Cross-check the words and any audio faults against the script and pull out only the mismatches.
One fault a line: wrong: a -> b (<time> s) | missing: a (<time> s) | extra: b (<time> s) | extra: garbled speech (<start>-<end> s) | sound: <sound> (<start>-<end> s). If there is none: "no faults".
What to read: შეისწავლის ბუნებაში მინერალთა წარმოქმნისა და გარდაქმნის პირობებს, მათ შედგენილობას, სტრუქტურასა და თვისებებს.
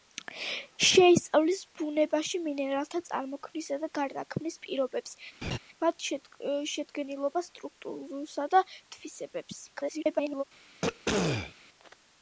sound: laugh (5.4-5.6 s)
extra: garbled speech (9.7-10.4 s)
sound: throat clearing (10.8-11.5 s)